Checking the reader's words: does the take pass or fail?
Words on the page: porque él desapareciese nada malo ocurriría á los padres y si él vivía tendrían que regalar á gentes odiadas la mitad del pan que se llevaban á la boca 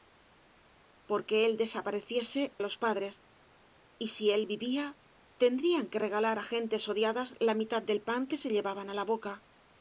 fail